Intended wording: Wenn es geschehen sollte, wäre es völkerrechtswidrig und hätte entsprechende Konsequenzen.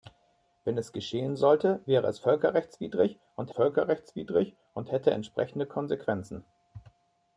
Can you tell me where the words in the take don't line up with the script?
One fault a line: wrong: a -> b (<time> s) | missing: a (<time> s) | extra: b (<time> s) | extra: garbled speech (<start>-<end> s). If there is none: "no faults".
extra: völkerrechtswidrig und (3.5 s)